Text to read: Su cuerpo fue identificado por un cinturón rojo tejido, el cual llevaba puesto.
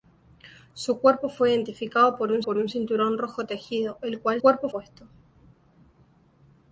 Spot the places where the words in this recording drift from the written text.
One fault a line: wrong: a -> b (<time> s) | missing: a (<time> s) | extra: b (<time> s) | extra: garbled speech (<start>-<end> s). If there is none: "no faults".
extra: por un (2.4 s)
wrong: llevaba -> cuerpo (4.4 s)